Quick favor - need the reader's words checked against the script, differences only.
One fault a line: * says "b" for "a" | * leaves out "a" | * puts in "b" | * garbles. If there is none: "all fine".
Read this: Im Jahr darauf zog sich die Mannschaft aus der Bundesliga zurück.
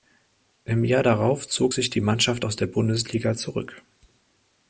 all fine